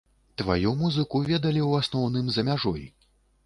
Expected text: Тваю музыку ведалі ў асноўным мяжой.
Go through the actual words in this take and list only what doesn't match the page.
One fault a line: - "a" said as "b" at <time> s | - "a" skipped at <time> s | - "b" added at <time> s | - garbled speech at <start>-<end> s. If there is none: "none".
- "за" added at 2.4 s